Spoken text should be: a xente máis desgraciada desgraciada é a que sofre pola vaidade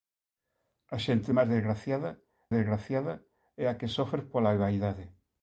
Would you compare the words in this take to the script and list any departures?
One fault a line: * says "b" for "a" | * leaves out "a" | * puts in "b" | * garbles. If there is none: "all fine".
all fine